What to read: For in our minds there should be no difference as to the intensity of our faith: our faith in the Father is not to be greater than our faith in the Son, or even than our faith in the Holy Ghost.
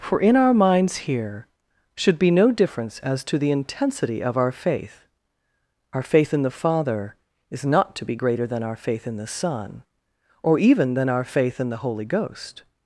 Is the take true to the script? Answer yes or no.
no